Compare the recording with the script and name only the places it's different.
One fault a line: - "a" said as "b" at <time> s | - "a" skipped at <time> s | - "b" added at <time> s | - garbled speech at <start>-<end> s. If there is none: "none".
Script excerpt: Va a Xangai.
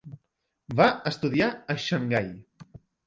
- "estudiar" added at 1.1 s